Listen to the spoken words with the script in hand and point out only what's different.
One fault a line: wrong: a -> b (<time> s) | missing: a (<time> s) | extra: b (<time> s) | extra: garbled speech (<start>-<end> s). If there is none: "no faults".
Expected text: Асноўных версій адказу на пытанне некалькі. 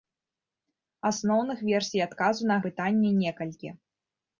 no faults